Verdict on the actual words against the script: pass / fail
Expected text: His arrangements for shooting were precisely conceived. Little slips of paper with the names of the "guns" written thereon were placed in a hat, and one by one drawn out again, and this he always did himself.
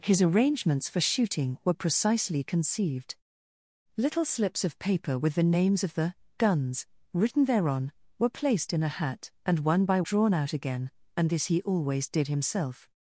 fail